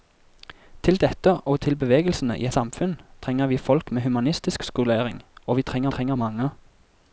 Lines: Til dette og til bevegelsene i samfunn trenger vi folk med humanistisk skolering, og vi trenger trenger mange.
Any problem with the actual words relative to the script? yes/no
no